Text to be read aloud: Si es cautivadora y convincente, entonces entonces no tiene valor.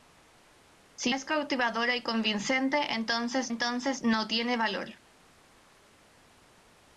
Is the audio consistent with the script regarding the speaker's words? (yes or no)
yes